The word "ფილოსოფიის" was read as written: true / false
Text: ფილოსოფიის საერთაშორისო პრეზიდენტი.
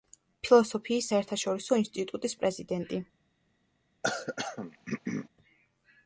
true